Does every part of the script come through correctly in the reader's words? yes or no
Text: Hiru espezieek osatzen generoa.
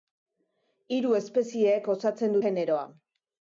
yes